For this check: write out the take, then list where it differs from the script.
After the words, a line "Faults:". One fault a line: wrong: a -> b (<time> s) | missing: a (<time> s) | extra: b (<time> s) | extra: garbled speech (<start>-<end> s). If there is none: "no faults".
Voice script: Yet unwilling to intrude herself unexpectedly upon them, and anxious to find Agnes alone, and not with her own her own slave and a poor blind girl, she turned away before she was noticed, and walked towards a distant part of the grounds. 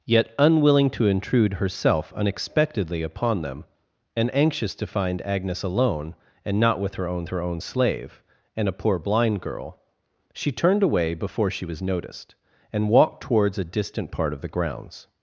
Yet unwilling to intrude herself unexpectedly upon them, and anxious to find Agnes alone, and not with her own her own slave and a poor blind girl, she turned away before she was noticed, and walked towards a distant part of the grounds.
Faults:
no faults